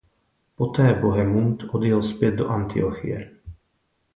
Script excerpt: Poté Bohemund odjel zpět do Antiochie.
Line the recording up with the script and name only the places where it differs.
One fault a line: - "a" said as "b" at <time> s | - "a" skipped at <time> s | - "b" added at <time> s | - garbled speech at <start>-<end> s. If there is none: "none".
none